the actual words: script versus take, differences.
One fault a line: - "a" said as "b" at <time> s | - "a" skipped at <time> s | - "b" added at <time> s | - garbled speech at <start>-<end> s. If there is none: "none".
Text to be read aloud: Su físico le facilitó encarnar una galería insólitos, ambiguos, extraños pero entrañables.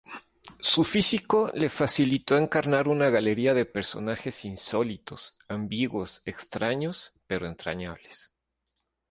- "de personajes" added at 3.5 s